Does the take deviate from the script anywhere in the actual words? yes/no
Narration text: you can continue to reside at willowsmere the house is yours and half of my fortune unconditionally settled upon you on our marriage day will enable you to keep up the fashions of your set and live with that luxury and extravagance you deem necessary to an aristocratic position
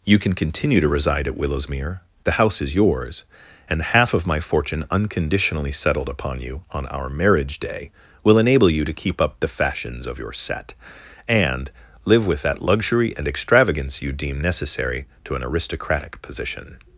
no